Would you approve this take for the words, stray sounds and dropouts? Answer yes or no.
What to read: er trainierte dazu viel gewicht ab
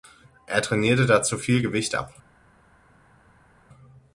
yes